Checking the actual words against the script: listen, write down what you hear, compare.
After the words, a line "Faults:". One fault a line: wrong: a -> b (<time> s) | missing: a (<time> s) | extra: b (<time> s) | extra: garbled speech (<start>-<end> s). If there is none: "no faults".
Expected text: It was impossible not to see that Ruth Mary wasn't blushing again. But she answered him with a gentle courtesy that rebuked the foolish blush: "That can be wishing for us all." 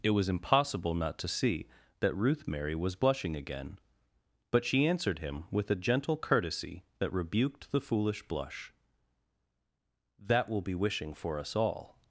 It was impossible not to see that Ruth Mary was blushing again. But she answered him with a gentle courtesy that rebuked the foolish blush: "That will be wishing for us all."
Faults:
wrong: wasn't -> was (2.8 s)
wrong: can -> will (10.5 s)